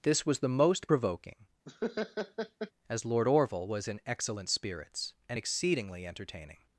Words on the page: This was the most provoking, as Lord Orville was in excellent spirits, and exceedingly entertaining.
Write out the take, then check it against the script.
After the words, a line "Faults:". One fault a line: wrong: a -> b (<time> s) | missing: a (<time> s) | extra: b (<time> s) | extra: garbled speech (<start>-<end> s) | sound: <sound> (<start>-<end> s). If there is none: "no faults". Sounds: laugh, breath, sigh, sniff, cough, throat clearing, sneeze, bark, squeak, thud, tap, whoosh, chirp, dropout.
This was the most provoking, as Lord Orville was in excellent spirits, and exceedingly entertaining.
Faults:
sound: laugh (1.7-2.7 s)